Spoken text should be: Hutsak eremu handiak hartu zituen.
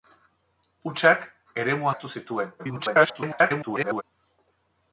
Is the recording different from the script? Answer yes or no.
yes